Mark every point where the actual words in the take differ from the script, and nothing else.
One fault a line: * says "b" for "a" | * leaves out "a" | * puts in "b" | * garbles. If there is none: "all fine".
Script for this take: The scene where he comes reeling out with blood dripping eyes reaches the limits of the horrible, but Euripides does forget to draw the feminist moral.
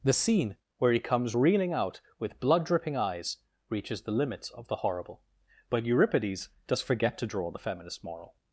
all fine